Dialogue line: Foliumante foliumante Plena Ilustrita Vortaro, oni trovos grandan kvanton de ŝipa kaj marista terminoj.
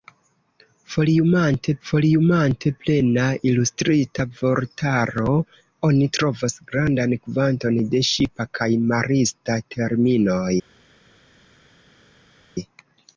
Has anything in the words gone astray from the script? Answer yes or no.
no